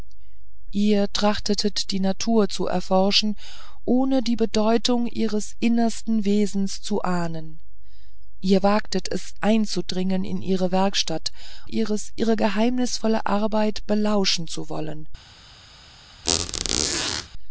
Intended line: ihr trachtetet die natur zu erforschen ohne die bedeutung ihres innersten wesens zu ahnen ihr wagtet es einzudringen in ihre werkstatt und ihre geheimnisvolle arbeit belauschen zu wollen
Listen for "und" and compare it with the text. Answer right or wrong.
wrong